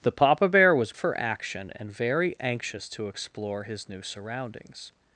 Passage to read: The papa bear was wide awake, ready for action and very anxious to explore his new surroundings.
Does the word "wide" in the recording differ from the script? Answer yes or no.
yes